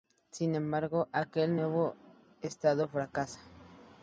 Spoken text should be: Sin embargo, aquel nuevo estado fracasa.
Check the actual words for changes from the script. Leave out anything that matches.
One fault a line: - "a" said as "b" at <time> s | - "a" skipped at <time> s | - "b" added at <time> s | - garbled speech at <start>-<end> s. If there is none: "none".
none